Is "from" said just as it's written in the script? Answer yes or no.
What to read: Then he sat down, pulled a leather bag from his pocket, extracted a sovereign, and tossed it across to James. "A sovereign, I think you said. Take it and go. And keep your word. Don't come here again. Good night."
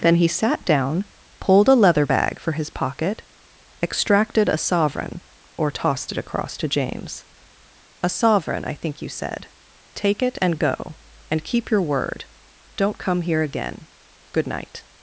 no